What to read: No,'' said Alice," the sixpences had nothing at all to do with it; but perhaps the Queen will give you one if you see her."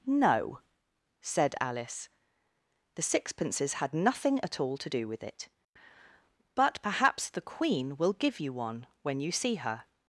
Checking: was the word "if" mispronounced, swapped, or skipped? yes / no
yes